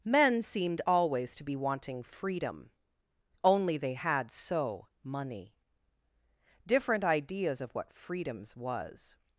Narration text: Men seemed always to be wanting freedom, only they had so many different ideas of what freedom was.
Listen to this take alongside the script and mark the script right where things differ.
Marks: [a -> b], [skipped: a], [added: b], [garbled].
Men seemed always to be wanting freedom, only they had so [many -> money] different ideas of what [freedom -> freedoms] was.